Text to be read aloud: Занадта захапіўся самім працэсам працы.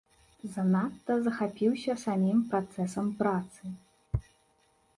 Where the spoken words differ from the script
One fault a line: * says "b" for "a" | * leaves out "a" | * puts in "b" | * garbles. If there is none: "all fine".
all fine